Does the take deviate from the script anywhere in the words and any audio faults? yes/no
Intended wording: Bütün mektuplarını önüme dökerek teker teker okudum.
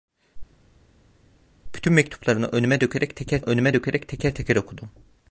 yes